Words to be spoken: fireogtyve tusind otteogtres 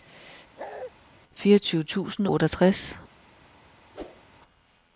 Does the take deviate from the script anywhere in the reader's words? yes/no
no